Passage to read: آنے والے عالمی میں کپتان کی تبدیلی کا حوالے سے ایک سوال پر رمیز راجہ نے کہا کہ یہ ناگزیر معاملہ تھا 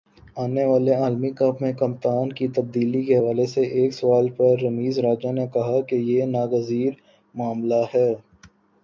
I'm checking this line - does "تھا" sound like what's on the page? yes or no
no